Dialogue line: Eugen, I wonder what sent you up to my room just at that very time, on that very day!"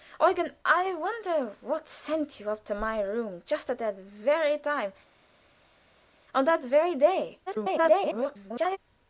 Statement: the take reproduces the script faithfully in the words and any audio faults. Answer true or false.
false